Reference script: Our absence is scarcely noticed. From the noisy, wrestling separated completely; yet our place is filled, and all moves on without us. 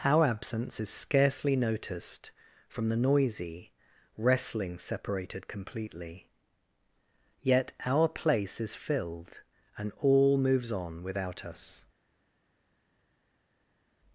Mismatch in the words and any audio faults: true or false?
false